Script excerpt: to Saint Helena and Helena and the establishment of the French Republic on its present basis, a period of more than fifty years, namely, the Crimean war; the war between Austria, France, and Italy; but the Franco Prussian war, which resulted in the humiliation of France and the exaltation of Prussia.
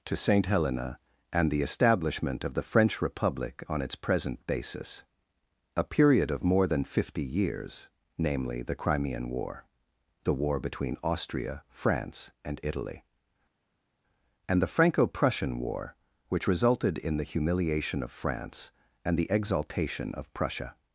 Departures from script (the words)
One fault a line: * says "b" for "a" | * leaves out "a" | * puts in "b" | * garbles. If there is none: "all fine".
* leaves out "Helena and"
* says "and" for "but"